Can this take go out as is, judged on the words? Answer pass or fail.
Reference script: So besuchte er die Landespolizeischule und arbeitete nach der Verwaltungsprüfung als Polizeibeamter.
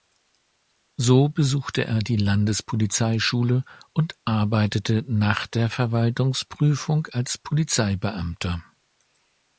pass